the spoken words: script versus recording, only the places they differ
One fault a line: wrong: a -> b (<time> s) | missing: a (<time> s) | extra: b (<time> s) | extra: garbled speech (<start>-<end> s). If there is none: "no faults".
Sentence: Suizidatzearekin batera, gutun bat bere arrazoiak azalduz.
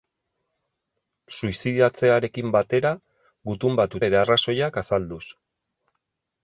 no faults